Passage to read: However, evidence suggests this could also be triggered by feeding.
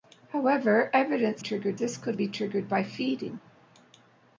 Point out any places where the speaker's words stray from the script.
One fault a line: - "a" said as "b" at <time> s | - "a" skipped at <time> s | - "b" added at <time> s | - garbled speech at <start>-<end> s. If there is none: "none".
- "suggests" said as "triggered" at 1.4 s
- "also" skipped at 2.2 s